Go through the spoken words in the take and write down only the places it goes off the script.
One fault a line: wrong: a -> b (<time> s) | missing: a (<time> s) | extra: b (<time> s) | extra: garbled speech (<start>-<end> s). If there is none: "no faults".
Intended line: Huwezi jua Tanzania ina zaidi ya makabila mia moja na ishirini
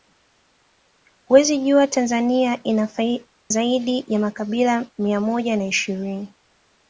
missing: ina (2.6 s)